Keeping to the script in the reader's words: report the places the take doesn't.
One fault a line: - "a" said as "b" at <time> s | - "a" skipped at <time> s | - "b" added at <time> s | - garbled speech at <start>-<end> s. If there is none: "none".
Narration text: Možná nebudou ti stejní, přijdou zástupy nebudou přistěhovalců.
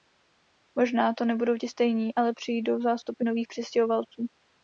- "to" added at 1.1 s
- "ale" added at 2.1 s
- "nebudou" said as "nových" at 3.2 s